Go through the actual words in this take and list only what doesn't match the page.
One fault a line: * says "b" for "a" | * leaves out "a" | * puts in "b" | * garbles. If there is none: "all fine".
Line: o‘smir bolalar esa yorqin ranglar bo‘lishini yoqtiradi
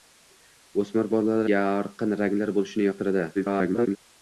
* leaves out "esa"
* garbles